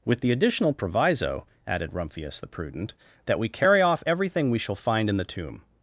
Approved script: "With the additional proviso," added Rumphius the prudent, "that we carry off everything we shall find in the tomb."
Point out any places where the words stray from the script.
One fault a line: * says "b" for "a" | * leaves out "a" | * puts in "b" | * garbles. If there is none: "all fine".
all fine